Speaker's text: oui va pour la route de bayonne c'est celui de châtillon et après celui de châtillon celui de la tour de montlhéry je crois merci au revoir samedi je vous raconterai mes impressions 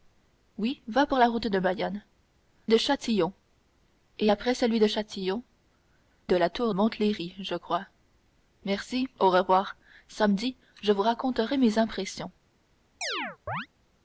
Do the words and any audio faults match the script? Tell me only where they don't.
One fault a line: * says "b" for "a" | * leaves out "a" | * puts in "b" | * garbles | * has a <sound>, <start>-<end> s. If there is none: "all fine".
* leaves out "c'est celui"
* leaves out "celui"
* leaves out "de"
* has a chirp, 13.0-13.7 s